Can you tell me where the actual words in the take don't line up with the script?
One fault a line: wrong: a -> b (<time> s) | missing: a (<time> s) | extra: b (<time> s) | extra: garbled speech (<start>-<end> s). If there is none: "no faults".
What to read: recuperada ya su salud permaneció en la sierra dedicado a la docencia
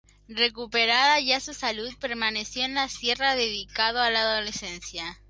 no faults